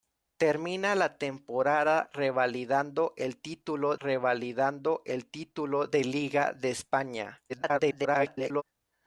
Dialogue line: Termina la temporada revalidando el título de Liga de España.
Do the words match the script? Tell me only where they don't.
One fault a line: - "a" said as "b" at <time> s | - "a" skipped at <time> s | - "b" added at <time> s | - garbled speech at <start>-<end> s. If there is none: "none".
- "revalidando el título" added at 4.0 s
- garbled speech at 7.5-8.6 s